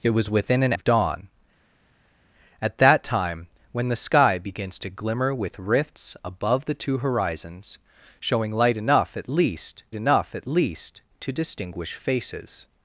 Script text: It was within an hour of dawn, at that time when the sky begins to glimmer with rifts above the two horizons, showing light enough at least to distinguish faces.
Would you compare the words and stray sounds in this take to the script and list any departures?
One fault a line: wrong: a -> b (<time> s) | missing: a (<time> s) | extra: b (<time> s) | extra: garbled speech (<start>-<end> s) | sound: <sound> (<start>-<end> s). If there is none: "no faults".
missing: hour (0.7 s)
extra: enough at least (9.9 s)